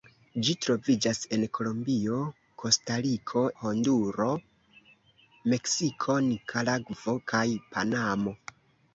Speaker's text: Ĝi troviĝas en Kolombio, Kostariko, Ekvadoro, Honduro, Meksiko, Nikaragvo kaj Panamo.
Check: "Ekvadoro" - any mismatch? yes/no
yes